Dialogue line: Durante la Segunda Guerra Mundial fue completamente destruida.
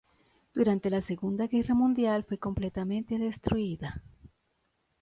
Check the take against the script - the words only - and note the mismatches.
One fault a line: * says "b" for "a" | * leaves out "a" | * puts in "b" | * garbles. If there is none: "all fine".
all fine